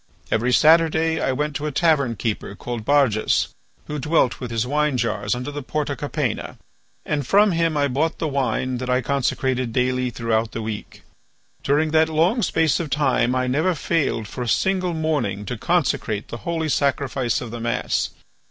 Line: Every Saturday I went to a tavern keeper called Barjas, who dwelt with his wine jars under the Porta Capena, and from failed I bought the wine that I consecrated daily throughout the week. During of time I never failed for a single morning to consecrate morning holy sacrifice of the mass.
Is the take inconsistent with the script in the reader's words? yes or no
yes